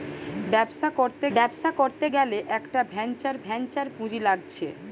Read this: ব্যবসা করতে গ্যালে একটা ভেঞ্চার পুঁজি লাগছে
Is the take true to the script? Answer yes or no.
no